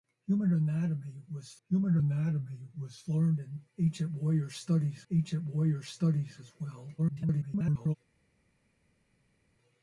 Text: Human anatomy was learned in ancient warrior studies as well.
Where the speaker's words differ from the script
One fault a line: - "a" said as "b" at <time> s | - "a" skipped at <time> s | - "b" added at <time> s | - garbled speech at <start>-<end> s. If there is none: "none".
- "human anatomy was" added at 1.7 s
- "ancient warrior studies" added at 5.1 s
- garbled speech at 7.0-8.0 s